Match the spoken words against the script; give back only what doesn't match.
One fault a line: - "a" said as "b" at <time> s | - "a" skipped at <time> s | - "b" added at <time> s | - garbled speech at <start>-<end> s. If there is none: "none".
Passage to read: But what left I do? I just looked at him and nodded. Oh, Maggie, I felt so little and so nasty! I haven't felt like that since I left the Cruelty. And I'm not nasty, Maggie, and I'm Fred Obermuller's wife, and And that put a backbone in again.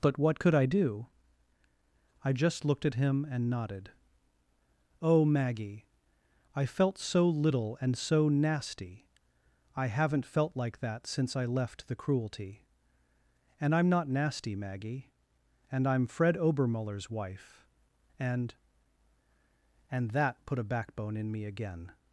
- "left" said as "could" at 0.4 s
- "me" added at 21.3 s